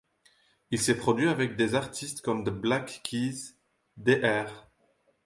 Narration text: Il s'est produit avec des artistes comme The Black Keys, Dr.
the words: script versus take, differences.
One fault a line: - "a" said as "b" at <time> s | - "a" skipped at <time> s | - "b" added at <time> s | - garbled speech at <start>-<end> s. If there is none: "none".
none